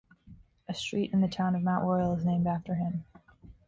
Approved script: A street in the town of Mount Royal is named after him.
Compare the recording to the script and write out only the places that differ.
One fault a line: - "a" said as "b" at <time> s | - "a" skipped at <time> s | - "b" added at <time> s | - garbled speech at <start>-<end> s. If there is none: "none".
none